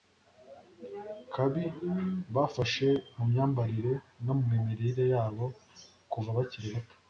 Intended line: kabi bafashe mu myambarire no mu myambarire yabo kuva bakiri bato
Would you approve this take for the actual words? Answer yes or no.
no